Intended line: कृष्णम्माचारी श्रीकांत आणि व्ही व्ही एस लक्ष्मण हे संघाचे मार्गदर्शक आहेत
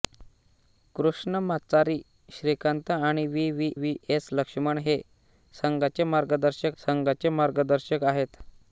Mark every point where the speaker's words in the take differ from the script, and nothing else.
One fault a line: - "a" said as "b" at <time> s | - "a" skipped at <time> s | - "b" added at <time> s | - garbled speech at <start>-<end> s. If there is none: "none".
- "व्ही" added at 3.7 s
- "संघाचे मार्गदर्शक" added at 6.8 s